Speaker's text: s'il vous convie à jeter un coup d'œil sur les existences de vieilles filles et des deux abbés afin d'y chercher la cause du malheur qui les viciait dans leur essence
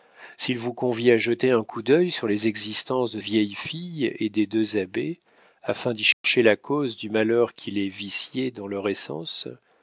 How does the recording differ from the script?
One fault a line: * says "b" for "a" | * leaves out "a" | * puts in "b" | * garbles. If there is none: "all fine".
all fine